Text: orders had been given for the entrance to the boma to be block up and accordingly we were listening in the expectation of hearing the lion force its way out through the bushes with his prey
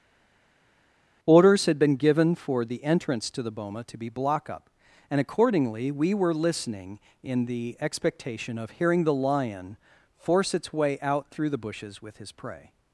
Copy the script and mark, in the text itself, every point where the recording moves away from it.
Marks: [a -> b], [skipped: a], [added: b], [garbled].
orders had been given for the entrance to the boma to be block up and accordingly we were listening in the expectation of hearing the lion force its way out through the bushes with his prey